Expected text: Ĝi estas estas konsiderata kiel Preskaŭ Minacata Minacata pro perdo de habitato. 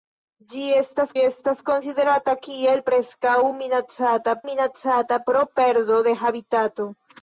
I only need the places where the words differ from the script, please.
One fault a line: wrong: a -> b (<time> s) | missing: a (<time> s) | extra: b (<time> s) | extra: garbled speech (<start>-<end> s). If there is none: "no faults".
no faults